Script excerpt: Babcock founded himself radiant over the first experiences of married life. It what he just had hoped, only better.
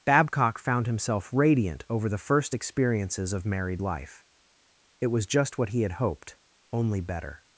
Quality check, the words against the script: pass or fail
fail